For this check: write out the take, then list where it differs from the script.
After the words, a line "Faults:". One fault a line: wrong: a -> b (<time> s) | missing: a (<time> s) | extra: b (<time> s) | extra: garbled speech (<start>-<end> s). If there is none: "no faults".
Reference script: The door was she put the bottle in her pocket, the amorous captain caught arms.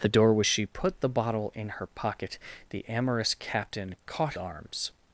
The door was she put the bottle in her pocket, the amorous captain caught arms.
Faults:
no faults